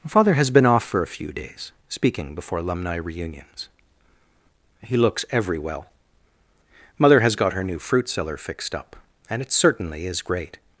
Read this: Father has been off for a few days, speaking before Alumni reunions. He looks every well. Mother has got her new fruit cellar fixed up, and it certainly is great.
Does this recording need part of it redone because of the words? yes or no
no